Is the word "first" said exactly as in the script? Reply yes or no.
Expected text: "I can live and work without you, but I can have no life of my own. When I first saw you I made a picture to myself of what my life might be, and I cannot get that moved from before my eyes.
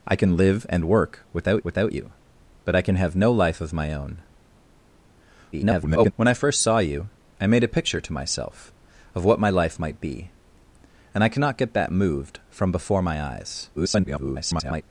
yes